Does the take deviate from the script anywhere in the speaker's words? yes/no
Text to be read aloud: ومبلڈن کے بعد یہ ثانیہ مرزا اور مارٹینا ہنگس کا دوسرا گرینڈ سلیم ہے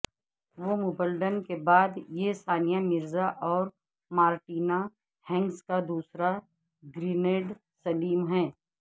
no